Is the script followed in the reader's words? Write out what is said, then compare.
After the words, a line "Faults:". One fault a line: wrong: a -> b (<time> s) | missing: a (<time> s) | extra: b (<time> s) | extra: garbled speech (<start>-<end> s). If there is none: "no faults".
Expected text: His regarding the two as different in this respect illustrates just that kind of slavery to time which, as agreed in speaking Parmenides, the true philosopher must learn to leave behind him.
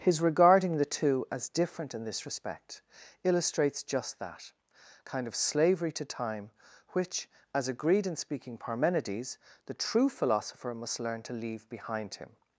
His regarding the two as different in this respect illustrates just that kind of slavery to time which, as agreed in speaking Parmenides, the true philosopher must learn to leave behind him.
Faults:
no faults